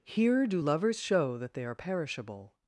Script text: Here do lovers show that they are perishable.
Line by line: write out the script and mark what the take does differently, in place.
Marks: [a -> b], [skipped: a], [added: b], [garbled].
Here do lovers show that they are perishable.